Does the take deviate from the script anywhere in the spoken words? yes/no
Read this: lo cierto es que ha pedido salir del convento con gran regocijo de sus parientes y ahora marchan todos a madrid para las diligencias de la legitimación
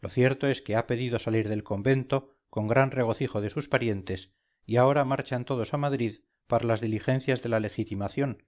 no